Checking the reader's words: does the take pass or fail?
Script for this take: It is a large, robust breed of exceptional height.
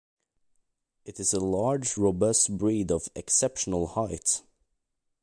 pass